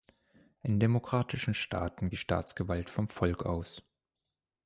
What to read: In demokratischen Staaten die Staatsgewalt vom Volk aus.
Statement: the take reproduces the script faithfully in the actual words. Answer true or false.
true